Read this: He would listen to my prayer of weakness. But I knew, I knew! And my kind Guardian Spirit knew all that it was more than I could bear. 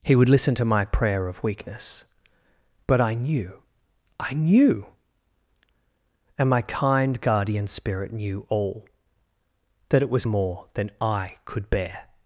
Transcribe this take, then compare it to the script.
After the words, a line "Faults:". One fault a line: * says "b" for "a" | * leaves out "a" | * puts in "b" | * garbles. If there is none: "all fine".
He would listen to my prayer of weakness. But I knew, I knew! And my kind Guardian Spirit knew all that it was more than I could bear.
Faults:
all fine